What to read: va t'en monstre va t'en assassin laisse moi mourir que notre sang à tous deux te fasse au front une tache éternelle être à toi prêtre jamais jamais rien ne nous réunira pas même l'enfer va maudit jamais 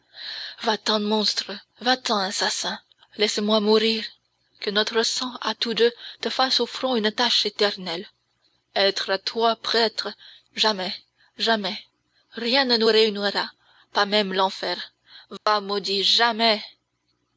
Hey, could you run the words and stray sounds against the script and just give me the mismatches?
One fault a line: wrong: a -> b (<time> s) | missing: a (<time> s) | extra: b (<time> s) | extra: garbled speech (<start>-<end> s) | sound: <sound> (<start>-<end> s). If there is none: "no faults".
sound: dropout (15.4-15.5 s)